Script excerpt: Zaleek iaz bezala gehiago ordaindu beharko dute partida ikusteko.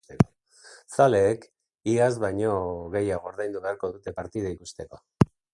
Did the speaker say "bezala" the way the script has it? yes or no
no